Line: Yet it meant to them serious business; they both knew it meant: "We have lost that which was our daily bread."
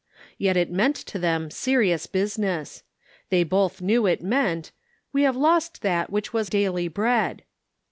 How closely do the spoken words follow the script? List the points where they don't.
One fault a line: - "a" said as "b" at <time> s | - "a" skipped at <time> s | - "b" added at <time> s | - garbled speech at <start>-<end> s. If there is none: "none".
- "our" skipped at 6.5 s